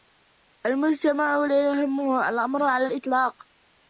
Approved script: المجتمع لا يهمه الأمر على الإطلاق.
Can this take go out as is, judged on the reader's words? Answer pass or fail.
pass